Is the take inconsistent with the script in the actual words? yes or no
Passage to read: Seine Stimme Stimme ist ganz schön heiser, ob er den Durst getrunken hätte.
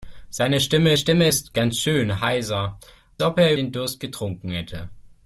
no